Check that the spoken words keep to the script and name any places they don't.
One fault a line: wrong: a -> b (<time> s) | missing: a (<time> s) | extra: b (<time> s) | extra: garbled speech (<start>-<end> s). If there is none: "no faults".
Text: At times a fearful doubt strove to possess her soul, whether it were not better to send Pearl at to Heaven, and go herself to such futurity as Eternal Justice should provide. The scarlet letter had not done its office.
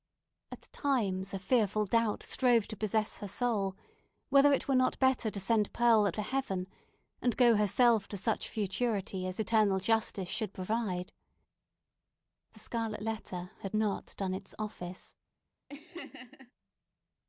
no faults